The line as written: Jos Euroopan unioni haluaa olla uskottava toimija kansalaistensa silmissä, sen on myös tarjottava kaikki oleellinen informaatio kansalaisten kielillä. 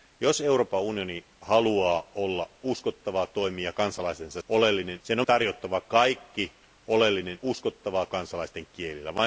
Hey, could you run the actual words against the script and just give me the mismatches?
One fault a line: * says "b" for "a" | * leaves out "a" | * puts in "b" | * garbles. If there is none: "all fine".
* says "oleellinen" for "silmissä"
* leaves out "myös"
* says "uskottava" for "informaatio"